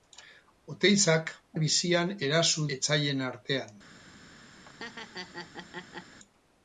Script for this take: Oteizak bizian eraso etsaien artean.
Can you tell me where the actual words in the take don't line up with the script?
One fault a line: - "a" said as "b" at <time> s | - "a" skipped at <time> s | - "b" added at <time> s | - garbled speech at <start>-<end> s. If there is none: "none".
none